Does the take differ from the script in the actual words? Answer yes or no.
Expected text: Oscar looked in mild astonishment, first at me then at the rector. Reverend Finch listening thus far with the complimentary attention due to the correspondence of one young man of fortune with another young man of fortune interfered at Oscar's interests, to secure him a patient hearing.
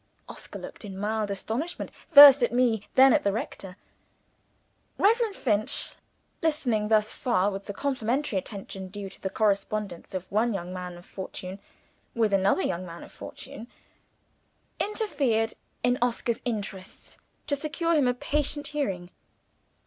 yes